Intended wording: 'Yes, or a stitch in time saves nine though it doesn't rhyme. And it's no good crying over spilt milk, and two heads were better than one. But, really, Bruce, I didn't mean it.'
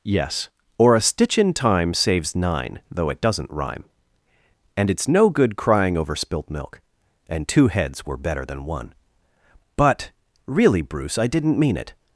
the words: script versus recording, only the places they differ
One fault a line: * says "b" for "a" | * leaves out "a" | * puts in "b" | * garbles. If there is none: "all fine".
all fine